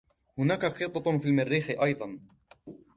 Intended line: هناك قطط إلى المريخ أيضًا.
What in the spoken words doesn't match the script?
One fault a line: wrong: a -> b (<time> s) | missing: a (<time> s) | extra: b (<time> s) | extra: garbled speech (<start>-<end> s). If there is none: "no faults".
wrong: إلى -> في (1.1 s)